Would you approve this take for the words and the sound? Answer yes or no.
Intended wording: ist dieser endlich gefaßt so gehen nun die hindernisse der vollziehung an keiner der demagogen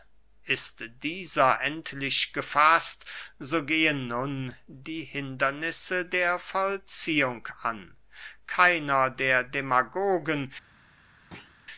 no